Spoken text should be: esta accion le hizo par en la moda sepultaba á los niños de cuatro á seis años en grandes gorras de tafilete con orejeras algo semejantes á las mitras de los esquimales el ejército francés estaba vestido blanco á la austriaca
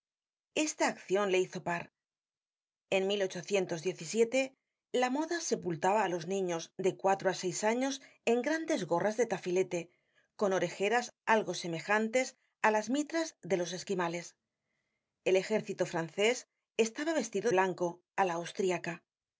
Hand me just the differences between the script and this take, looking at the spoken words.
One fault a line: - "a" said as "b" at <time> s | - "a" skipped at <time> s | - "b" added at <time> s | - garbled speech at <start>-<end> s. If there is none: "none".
none